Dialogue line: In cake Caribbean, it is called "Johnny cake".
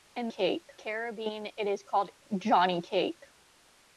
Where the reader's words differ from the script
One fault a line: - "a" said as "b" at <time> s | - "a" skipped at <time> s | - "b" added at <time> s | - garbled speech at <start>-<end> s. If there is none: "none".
none